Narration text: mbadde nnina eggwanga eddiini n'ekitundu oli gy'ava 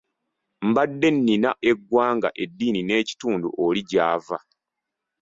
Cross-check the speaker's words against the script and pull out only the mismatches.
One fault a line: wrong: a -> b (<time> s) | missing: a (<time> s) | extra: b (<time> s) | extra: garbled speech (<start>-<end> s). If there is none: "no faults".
no faults